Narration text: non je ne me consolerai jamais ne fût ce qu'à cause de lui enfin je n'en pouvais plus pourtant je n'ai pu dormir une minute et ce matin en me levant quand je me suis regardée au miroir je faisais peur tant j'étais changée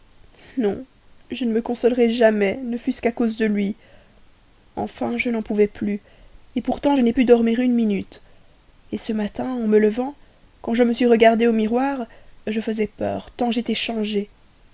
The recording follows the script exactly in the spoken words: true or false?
true